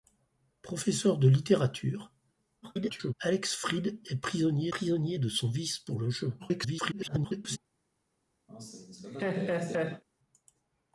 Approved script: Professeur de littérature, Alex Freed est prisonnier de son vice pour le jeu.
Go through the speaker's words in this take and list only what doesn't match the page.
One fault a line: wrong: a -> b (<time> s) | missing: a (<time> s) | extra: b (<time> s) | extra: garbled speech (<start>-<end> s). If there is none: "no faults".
extra: garbled speech (2.6-3.1 s)
extra: prisonnier (4.7 s)
extra: garbled speech (6.4-7.6 s)